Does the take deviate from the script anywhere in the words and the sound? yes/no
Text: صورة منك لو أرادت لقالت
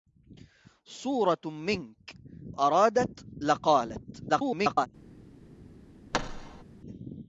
yes